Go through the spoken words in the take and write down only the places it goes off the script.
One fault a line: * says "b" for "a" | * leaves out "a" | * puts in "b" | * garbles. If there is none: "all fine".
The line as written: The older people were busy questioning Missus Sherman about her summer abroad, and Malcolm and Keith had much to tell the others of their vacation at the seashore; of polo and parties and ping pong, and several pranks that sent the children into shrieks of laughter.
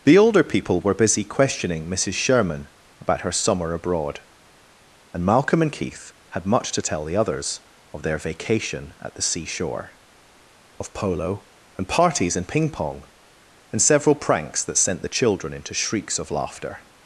all fine